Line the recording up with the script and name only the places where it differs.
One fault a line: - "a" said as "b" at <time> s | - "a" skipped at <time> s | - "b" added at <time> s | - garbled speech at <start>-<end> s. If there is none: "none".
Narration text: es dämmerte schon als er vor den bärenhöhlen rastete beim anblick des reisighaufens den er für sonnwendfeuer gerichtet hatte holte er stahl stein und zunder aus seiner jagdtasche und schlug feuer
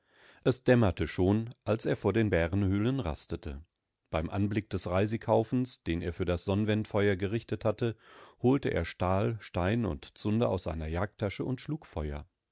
- "das" added at 6.2 s